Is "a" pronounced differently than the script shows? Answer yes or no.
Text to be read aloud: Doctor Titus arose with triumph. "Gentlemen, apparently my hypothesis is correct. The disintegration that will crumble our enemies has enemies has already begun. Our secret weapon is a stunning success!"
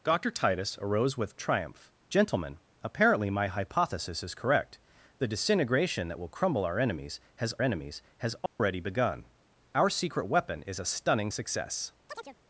no